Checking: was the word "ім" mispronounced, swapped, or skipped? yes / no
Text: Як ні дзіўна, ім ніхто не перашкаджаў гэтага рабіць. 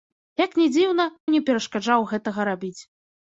yes